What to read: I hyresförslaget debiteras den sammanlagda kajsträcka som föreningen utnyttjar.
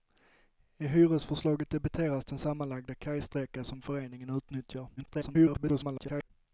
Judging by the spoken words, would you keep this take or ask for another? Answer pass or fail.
fail